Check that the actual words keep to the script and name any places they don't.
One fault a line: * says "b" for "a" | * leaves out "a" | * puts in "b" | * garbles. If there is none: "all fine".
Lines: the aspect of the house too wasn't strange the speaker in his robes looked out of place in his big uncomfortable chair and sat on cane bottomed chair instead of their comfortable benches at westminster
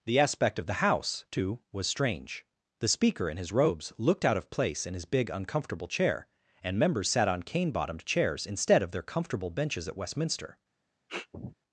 * says "was" for "wasn't"
* puts in "members"
* says "chairs" for "chair"